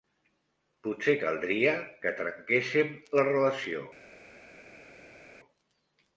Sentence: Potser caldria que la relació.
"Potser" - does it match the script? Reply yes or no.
yes